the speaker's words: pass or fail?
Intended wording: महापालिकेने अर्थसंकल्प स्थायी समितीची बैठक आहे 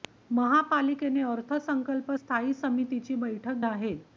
pass